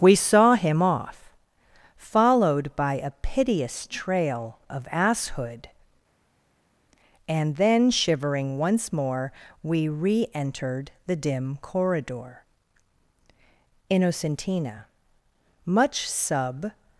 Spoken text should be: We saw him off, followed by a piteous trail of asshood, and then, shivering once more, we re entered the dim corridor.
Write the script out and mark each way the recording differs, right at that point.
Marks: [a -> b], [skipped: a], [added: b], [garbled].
We saw him off, followed by a piteous trail of asshood, and then, shivering once more, we re entered the dim corridor. [added: Innocentina much sub]